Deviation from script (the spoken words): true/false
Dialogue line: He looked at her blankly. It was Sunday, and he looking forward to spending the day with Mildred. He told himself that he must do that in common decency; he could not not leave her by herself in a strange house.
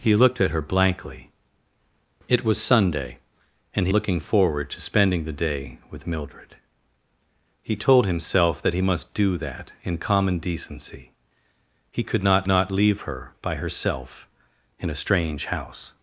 false